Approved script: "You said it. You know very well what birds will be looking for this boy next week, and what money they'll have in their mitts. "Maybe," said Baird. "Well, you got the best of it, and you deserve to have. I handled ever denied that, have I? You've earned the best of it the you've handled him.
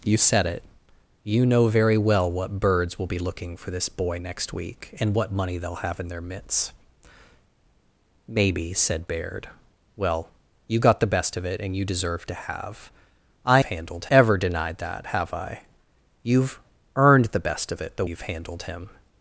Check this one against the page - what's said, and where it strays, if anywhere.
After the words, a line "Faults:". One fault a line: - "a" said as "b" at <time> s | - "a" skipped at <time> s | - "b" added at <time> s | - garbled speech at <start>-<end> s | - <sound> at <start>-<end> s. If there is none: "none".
"You said it. You know very well what birds will be looking for this boy next week, and what money they'll have in their mitts. "Maybe," said Baird. "Well, you got the best of it, and you deserve to have. I handled ever denied that, have I? You've earned the best of it the you've handled him.
Faults:
none